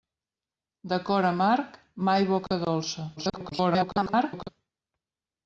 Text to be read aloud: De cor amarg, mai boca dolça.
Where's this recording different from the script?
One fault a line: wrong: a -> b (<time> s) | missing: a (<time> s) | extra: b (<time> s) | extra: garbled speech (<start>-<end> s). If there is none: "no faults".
extra: garbled speech (3.2-4.5 s)